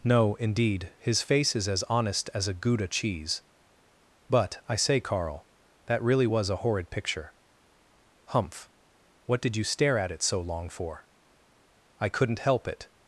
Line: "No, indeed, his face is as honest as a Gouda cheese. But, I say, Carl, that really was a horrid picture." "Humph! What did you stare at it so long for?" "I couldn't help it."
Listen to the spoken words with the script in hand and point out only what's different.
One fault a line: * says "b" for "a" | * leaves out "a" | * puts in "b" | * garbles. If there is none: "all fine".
all fine